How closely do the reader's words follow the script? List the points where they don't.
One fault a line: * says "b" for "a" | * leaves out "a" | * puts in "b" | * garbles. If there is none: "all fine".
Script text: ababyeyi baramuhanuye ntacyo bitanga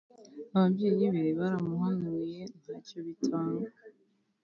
* puts in "be"